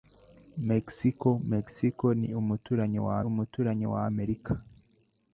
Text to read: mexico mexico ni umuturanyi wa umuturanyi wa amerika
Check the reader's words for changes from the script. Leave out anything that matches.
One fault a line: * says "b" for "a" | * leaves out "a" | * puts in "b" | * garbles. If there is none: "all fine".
all fine